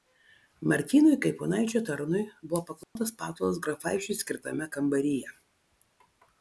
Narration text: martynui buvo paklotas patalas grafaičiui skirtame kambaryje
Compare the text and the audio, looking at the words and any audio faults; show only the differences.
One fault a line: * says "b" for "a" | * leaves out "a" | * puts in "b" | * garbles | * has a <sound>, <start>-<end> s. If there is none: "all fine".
* puts in "kaip ponaičio tarnui"
* has a dropout, 2.8-3.0 s